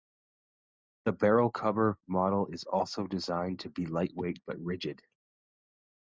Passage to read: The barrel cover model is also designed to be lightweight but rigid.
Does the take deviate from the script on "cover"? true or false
false